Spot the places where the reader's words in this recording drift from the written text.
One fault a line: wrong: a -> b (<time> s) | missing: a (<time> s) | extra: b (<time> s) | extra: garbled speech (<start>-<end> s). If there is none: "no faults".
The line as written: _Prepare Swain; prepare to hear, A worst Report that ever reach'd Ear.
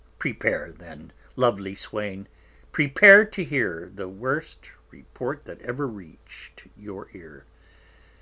extra: then lovely (0.8 s)
wrong: A -> The (3.9 s)
extra: your (6.8 s)